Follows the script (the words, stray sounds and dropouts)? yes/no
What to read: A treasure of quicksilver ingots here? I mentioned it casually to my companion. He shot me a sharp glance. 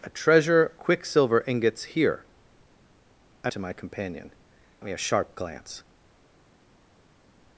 no